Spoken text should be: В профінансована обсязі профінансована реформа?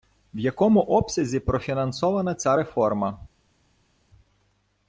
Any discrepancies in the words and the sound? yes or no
yes